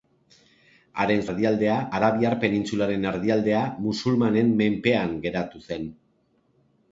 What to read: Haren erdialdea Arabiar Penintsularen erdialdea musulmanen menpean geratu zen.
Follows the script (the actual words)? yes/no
yes